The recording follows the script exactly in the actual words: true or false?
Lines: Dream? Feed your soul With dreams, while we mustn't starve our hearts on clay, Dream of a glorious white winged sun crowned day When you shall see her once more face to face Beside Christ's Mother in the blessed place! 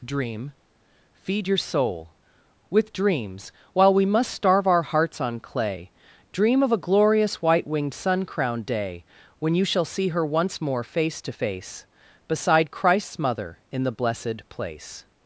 false